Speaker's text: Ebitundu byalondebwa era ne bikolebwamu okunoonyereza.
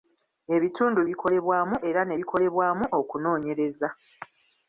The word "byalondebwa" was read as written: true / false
false